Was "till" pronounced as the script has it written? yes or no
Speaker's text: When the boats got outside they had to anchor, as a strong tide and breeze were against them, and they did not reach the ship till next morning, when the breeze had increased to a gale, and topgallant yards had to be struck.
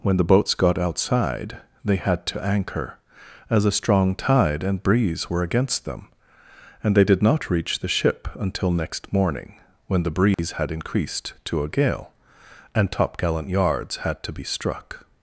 no